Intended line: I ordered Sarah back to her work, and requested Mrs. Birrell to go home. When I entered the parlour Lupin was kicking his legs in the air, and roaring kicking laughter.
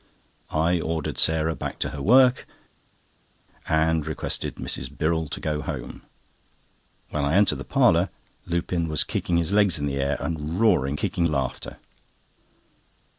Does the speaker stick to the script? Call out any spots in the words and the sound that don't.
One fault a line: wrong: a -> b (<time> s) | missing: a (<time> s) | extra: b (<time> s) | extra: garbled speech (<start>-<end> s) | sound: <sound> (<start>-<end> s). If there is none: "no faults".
no faults